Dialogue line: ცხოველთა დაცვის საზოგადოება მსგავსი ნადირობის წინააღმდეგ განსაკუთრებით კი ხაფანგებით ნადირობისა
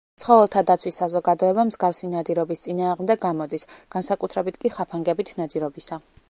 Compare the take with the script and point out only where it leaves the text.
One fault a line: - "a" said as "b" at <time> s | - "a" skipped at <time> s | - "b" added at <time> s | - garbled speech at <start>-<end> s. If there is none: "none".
- "გამოდის" added at 3.3 s